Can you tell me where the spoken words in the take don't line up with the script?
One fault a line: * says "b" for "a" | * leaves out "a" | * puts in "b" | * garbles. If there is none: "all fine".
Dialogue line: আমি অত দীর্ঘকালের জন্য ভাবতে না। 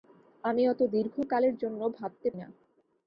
all fine